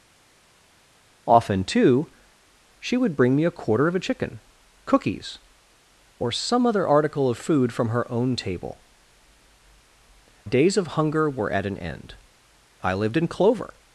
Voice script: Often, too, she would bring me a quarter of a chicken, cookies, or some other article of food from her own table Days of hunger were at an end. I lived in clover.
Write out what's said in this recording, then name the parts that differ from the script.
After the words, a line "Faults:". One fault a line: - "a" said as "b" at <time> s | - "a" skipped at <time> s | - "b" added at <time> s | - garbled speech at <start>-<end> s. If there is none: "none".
Often, too, she would bring me a quarter of a chicken, cookies, or some other article of food from her own table Days of hunger were at an end. I lived in clover.
Faults:
none